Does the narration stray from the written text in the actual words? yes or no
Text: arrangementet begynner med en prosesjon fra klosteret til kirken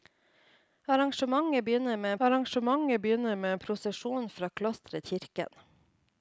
yes